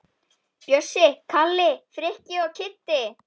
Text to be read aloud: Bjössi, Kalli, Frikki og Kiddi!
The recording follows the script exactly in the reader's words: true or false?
true